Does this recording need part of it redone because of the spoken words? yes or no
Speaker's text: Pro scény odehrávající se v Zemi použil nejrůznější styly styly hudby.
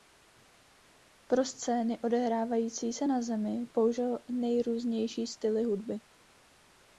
yes